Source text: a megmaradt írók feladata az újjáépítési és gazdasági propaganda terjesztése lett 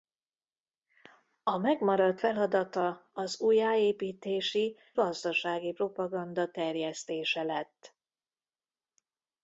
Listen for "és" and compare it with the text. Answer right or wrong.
wrong